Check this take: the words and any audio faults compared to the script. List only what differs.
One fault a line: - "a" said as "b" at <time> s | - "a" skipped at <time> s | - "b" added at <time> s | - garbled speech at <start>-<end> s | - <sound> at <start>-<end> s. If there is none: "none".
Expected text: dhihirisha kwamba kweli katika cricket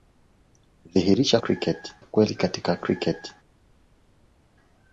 - "kwamba" said as "cricket" at 1.4 s